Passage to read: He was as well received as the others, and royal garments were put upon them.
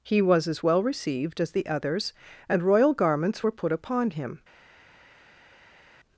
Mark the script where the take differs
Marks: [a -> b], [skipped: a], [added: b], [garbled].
He was as well received as the others, and royal garments were put upon [them. -> him]